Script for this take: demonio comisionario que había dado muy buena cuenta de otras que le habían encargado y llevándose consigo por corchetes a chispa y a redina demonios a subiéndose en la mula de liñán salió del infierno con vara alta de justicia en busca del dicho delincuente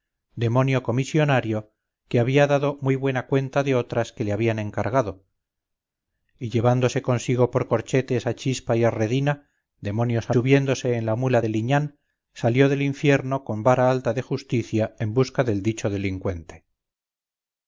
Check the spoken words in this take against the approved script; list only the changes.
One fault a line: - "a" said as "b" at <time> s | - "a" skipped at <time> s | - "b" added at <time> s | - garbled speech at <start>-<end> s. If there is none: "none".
none